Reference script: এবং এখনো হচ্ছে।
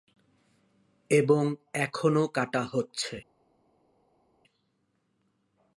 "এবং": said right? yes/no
yes